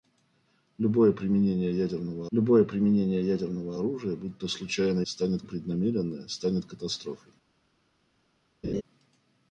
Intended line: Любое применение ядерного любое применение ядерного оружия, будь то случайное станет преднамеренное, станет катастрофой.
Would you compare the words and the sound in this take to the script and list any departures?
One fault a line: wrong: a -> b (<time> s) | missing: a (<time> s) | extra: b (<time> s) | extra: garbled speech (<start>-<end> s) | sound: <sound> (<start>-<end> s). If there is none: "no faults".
sound: laugh (8.6-8.8 s)